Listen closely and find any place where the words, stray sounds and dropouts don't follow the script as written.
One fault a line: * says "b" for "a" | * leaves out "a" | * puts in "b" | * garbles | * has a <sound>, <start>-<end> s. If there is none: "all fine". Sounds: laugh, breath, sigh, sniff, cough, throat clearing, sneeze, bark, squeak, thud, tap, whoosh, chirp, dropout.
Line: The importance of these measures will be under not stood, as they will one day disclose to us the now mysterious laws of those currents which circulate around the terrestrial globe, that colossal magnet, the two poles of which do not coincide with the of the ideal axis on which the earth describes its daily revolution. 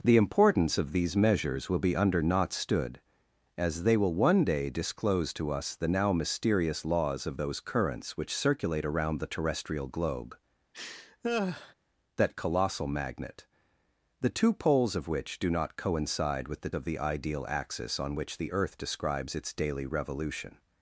* has a laugh, 10.7-11.7 s